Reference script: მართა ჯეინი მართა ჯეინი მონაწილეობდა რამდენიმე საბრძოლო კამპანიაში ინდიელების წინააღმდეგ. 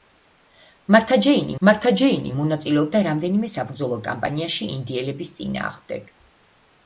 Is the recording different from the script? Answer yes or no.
no